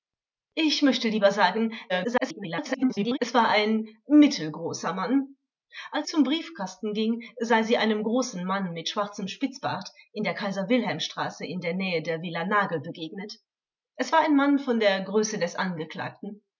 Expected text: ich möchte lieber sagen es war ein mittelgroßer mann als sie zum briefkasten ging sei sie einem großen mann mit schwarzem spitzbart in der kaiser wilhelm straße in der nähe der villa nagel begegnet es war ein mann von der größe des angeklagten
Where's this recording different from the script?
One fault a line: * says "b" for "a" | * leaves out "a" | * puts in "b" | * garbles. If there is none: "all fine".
* garbles
* leaves out "sie"